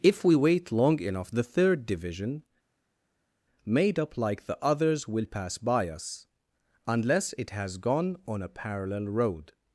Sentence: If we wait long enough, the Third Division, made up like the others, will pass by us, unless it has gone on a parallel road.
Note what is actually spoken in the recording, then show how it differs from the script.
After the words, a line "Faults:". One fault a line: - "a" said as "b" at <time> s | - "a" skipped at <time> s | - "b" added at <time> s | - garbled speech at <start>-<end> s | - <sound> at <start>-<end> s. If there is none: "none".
If we wait long enough, the Third Division, made up like the others, will pass by us, unless it has gone on a parallel road.
Faults:
none